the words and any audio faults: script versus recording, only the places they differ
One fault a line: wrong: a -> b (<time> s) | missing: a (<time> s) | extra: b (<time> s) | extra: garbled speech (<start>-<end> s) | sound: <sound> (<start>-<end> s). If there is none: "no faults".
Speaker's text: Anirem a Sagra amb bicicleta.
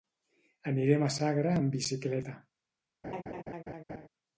sound: laugh (3.0-4.1 s)